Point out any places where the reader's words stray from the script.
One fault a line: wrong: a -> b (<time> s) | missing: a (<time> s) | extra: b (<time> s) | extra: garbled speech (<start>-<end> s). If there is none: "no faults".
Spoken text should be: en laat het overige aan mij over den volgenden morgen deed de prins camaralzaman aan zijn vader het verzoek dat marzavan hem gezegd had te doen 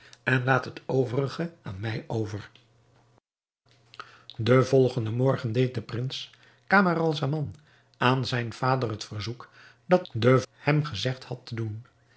wrong: marzavan -> den (10.1 s)